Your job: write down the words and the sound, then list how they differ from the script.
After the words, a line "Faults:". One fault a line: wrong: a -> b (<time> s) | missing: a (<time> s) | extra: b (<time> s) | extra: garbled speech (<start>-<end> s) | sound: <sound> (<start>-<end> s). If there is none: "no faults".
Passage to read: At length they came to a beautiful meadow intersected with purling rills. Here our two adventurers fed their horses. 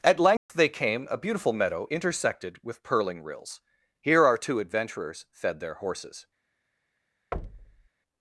At length they came a beautiful meadow intersected with purling rills. Here our two adventurers fed their horses.
Faults:
sound: dropout (0.4-0.5 s)
missing: to (1.1 s)
sound: thud (7.3-7.9 s)